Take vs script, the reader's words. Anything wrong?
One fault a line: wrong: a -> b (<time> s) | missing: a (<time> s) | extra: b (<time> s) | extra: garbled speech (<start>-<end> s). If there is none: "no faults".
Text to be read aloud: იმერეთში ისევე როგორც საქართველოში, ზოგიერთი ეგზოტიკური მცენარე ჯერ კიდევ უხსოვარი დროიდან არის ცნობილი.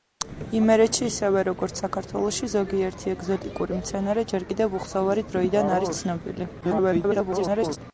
extra: garbled speech (6.6-7.8 s)